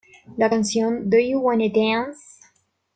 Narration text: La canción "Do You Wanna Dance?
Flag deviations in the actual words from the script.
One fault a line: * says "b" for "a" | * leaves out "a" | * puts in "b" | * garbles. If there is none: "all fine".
all fine